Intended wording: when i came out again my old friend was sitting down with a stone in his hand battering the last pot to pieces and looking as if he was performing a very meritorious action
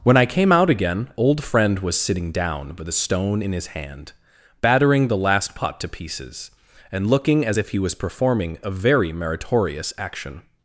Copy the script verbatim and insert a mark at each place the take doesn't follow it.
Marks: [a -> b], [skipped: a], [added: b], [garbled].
when i came out again [skipped: my] old friend was sitting down with a stone in his hand battering the last pot to pieces and looking as if he was performing a very meritorious action